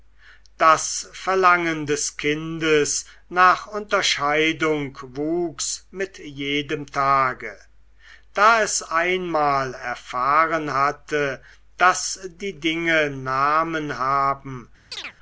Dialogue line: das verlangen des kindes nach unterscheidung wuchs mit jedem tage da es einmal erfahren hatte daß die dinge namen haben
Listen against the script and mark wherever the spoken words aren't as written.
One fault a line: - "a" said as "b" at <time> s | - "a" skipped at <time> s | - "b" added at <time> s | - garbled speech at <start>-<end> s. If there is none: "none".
none